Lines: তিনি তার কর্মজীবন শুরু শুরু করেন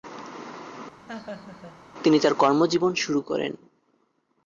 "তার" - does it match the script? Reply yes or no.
yes